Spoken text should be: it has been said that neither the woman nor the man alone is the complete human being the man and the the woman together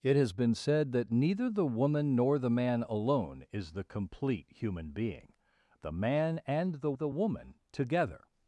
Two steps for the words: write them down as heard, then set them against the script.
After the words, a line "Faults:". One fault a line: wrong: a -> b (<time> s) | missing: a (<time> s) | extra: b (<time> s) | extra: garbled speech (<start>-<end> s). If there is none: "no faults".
it has been said that neither the woman nor the man alone is the complete human being the man and the the woman together
Faults:
no faults